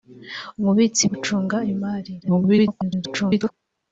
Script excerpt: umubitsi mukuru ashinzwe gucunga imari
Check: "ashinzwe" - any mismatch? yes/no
yes